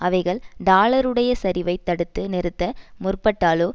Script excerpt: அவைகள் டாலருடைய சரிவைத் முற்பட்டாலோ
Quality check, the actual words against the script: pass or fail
fail